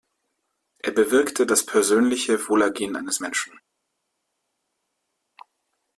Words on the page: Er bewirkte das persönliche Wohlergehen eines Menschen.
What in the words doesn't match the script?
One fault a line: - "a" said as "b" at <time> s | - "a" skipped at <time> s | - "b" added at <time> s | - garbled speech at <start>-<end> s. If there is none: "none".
none